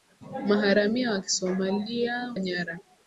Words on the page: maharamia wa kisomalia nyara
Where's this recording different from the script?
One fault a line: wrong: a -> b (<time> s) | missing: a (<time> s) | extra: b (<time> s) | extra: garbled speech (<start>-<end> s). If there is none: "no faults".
no faults